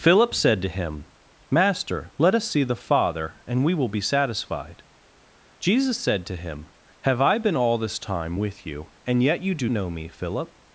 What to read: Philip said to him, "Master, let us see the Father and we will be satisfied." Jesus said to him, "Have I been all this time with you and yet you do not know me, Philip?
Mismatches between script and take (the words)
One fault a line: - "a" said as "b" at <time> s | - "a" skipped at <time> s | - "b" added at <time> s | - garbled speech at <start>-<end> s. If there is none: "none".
- "not" skipped at 9.7 s